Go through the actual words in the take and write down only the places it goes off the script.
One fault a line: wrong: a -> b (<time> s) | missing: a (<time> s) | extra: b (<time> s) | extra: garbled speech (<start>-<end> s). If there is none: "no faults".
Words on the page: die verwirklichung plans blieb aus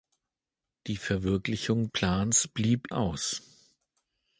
no faults